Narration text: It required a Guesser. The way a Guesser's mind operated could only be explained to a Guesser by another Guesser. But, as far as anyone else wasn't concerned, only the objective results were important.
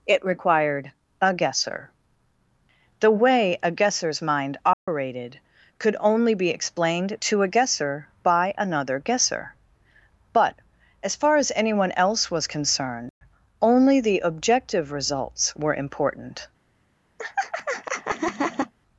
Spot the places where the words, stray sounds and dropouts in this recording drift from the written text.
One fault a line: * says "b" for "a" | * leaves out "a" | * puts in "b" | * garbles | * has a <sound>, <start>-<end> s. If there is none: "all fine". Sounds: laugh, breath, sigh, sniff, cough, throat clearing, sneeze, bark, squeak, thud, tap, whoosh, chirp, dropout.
* has a dropout, 4.7-4.9 s
* says "was" for "wasn't"
* has a laugh, 17.2-18.7 s